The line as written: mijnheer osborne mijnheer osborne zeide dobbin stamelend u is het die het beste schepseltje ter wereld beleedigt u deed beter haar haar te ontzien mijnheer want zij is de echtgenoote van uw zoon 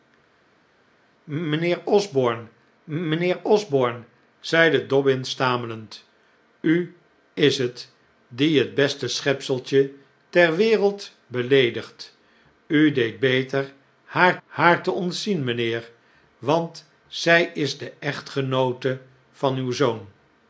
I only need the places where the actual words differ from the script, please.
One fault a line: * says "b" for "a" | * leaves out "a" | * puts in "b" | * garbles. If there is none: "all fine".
all fine